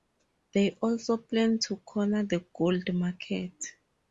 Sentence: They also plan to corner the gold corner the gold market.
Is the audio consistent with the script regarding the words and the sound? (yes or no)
no